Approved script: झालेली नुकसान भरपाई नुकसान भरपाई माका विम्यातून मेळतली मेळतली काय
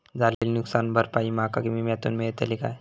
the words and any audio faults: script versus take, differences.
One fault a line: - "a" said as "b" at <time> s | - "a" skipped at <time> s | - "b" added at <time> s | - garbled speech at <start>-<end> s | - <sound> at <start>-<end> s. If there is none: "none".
- dropout at 0.3-0.4 s
- "नुकसान भरपाई" skipped at 1.3 s
- "मेळतली" skipped at 2.6 s